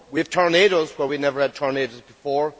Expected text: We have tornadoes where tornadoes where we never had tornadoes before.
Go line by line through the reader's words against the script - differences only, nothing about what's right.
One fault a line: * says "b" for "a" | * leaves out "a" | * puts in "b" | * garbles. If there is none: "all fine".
* leaves out "tornadoes where"